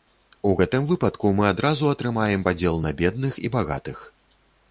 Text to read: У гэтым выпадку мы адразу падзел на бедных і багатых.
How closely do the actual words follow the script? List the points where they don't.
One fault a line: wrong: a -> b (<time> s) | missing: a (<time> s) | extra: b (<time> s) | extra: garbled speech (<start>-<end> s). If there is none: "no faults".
extra: атрымаем (1.9 s)